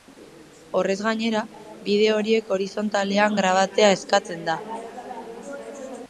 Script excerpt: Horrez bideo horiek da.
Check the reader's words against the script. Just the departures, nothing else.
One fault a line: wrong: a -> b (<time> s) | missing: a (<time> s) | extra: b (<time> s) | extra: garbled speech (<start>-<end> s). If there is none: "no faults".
extra: gainera (1.1 s)
extra: horizontalean grabatzea eskatzen (2.5 s)